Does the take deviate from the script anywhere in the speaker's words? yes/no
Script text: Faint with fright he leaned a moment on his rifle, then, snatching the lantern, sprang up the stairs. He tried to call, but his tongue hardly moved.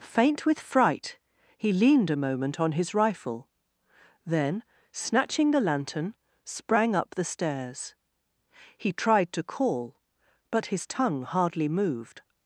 no